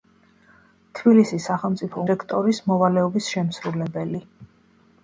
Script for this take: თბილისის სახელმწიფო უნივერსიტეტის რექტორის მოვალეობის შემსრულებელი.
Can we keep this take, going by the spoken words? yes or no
no